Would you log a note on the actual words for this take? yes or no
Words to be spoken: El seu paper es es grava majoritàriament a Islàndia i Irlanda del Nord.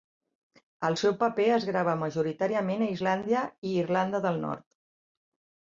yes